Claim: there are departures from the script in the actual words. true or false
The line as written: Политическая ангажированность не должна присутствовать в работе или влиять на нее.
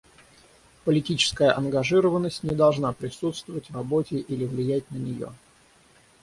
false